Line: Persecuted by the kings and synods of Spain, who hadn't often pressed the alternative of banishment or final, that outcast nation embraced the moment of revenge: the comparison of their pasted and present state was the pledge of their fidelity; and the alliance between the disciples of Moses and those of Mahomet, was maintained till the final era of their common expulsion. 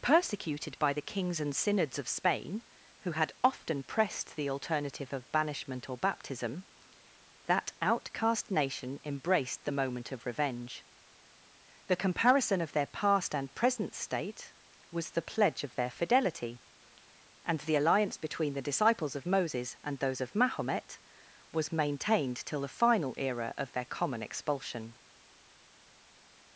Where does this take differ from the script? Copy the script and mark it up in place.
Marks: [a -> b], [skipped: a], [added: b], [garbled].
Persecuted by the kings and synods of Spain, who [hadn't -> had] often pressed the alternative of banishment or [final, -> baptism] that outcast nation embraced the moment of revenge: the comparison of their [pasted -> past] and present state was the pledge of their fidelity; and the alliance between the disciples of Moses and those of Mahomet, was maintained till the final era of their common expulsion.